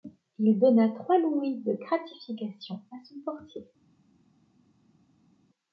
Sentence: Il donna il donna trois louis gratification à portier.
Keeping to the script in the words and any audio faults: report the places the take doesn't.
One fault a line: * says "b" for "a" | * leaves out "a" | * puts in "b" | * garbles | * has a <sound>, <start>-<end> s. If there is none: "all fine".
* leaves out "il donna"
* puts in "de"
* puts in "son"